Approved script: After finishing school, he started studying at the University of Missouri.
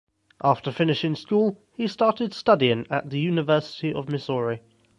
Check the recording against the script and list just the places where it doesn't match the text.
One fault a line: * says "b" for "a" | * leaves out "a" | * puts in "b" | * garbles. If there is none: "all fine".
all fine